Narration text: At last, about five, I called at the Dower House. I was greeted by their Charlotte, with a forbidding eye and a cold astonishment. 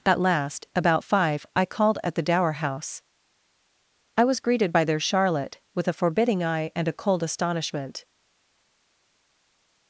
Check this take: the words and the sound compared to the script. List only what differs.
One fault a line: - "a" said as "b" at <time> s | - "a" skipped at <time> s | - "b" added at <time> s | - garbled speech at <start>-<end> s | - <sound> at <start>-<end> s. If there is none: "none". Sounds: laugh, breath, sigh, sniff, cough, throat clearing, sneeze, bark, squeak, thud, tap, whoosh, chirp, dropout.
none